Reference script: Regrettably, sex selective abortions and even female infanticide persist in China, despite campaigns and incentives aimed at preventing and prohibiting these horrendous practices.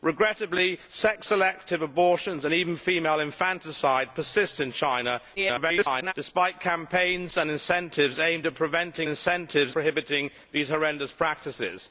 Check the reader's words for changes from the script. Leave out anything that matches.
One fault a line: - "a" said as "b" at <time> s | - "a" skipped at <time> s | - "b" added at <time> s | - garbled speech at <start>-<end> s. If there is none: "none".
- garbled speech at 5.4-6.1 s
- "and" said as "incentives" at 9.1 s